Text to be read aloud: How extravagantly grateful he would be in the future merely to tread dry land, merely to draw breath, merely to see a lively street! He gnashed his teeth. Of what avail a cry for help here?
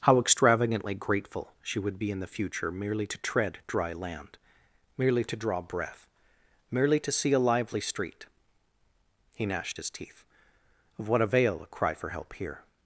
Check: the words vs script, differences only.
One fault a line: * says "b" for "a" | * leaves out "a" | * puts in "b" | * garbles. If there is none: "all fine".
* says "she" for "he"